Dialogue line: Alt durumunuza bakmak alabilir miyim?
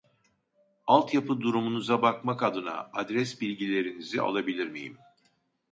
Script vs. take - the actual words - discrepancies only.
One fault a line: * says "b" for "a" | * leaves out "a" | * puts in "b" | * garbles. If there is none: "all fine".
* puts in "yapı"
* puts in "adına adres bilgilerinizi"